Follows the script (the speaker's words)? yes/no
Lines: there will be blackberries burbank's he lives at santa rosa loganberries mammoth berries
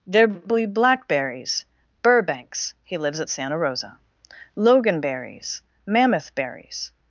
no